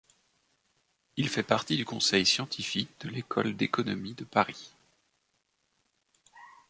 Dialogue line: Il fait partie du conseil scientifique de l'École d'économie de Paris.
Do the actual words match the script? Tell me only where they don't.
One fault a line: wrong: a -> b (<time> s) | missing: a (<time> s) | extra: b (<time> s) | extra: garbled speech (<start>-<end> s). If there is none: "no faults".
no faults